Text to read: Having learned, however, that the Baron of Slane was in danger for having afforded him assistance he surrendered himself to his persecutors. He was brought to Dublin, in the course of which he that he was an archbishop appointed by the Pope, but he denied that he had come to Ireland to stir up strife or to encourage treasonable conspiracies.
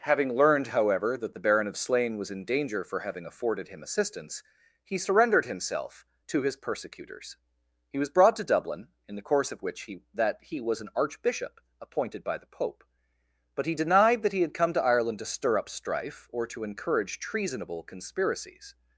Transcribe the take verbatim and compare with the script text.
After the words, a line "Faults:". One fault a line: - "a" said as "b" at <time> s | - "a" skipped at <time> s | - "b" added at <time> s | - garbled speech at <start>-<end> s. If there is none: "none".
Having learned, however, that the Baron of Slane was in danger for having afforded him assistance he surrendered himself to his persecutors. He was brought to Dublin, in the course of which he that he was an archbishop appointed by the Pope, but he denied that he had come to Ireland to stir up strife or to encourage treasonable conspiracies.
Faults:
none